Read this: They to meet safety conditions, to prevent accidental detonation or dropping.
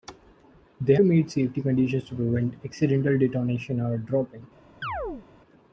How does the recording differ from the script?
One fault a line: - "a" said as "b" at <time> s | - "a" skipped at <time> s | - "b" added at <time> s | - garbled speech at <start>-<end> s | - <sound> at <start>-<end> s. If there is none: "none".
- chirp at 4.8-5.3 s